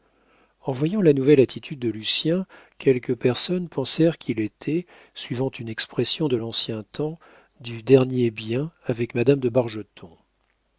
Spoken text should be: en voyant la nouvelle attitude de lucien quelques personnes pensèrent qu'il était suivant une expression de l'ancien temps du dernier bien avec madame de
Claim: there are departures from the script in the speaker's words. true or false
false